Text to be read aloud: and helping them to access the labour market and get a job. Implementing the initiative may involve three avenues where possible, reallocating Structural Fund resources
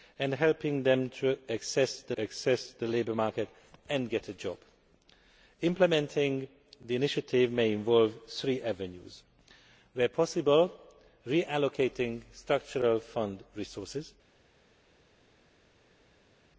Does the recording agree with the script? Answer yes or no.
no